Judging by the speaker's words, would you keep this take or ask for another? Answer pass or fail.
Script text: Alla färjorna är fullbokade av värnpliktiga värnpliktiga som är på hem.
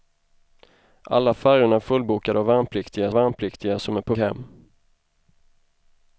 pass